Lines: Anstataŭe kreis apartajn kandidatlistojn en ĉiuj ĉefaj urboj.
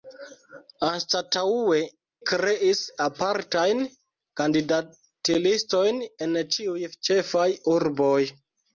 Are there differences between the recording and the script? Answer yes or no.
no